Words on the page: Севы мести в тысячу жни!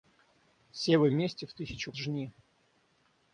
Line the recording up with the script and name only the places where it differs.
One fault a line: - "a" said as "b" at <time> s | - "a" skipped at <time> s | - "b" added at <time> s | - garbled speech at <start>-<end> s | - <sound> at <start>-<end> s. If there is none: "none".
none